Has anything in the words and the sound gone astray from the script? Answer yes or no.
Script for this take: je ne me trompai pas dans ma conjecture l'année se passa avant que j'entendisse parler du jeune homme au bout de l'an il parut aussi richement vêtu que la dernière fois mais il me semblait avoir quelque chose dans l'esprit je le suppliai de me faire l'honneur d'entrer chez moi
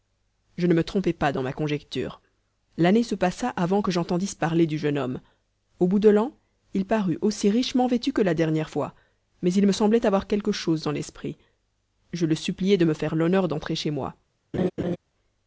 yes